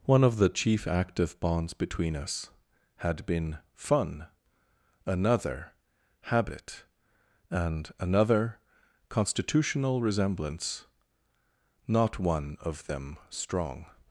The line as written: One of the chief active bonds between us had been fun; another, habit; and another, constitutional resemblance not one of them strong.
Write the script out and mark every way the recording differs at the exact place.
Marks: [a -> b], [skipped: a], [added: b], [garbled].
One of the chief active bonds between us had been fun; another, habit; and another, constitutional resemblance not one of them strong.